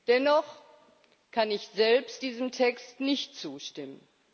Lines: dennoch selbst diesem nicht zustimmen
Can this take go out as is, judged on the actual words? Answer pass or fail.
fail